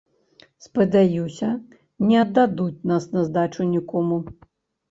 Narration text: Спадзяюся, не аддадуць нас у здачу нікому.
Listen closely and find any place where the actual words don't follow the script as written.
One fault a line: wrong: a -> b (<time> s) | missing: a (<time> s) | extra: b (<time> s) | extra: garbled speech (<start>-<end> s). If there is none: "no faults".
wrong: у -> на (3.2 s)